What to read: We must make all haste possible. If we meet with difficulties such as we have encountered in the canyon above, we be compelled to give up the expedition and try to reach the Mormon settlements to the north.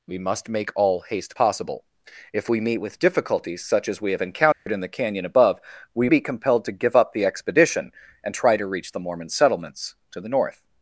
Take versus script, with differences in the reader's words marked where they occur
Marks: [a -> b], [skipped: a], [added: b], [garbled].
We must make all haste possible. If we meet with difficulties such as we have encountered in the canyon above, we be compelled to give up the expedition and try to reach the Mormon settlements to the north.